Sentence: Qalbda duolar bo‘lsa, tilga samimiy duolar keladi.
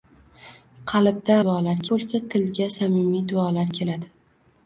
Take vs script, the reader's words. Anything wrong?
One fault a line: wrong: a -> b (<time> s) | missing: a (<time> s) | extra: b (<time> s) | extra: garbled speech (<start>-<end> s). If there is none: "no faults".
no faults